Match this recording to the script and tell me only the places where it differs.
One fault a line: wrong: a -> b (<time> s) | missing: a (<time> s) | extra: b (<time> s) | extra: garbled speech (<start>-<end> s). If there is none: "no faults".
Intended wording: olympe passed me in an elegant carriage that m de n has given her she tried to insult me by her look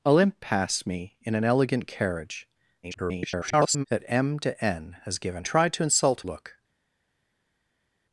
extra: garbled speech (2.8-3.9 s)
missing: her she (5.4 s)
missing: me by her (6.3 s)